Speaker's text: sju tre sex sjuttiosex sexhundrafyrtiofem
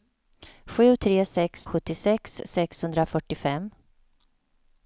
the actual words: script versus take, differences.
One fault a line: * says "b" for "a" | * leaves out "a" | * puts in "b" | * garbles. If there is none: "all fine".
all fine